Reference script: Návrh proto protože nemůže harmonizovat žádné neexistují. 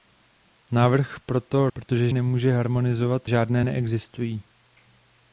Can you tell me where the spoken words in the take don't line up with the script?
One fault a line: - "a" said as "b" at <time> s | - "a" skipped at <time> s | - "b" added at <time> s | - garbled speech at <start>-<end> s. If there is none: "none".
none